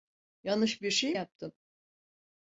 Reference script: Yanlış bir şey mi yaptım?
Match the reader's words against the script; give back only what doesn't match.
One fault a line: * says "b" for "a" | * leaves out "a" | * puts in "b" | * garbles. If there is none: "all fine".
* leaves out "mi"